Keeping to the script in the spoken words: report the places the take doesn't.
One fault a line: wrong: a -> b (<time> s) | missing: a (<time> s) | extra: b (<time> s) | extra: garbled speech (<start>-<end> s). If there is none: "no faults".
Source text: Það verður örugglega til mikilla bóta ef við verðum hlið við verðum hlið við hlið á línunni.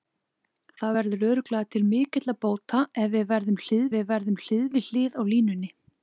no faults